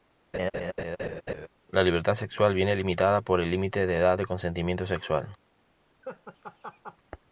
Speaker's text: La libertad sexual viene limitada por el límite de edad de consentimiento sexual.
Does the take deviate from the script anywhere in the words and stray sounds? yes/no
yes